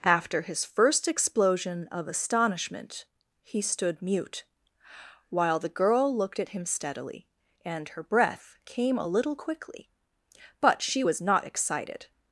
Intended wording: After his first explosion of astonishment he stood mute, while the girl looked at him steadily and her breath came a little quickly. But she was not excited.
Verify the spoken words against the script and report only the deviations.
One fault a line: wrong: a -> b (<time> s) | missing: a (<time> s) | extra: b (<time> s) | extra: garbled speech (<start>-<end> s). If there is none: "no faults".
no faults